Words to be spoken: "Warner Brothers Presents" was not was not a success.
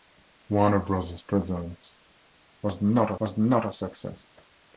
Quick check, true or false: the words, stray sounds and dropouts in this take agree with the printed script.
true